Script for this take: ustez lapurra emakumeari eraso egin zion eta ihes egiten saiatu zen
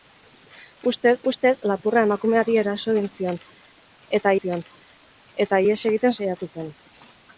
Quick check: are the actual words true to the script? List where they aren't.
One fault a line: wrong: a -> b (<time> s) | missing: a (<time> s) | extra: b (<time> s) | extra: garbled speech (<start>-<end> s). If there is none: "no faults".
extra: ustez (1.3 s)
extra: zion eta (4.4 s)